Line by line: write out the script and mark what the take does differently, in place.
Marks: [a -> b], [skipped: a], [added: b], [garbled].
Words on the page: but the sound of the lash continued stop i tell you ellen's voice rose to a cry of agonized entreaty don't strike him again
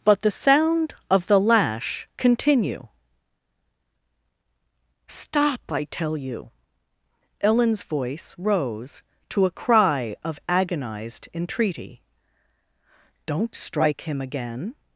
but the sound of the lash [continued -> continue] stop i tell you ellen's voice rose to a cry of agonized entreaty don't strike him again